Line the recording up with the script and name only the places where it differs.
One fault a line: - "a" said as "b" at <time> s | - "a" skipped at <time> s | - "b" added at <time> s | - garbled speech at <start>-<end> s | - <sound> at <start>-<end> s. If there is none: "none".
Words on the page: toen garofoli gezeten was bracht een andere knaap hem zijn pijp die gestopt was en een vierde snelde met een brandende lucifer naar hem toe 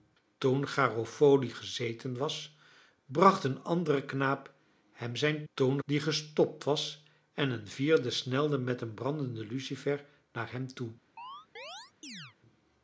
- "pijp" said as "toen" at 5.5 s
- chirp at 11.2-12.4 s